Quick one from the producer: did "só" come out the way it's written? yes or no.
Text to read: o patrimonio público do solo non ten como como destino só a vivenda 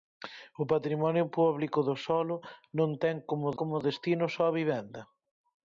yes